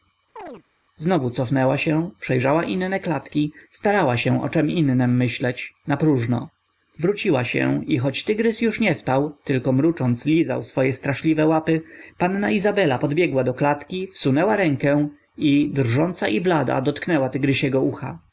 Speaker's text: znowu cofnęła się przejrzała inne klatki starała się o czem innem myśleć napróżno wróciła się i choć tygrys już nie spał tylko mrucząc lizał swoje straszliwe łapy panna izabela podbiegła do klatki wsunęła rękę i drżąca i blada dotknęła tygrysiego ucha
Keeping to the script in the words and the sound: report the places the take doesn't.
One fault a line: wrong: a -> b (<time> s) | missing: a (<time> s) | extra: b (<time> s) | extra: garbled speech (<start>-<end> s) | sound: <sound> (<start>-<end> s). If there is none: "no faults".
sound: chirp (0.4-0.6 s)